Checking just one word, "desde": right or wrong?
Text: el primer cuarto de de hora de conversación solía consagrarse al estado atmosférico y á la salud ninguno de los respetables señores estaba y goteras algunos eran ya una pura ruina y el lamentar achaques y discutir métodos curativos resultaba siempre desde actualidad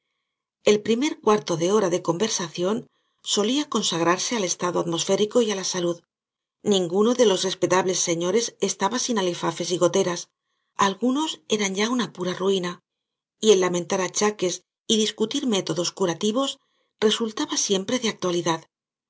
wrong